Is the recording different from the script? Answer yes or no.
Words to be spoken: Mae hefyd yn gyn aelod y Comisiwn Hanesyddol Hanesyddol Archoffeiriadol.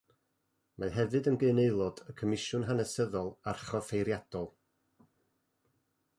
yes